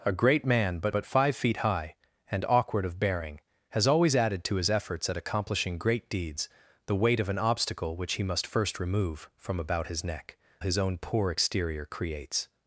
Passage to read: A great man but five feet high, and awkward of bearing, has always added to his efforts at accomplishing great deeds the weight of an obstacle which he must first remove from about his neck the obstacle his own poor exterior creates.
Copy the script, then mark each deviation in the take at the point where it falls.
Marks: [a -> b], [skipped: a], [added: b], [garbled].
A great man but [added: but] five feet high, and awkward of bearing, has always added to his efforts at accomplishing great deeds the weight of an obstacle which he must first remove from about his neck [skipped: the obstacle] his own poor exterior creates.